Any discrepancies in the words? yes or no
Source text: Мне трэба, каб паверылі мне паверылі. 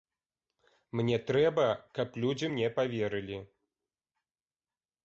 yes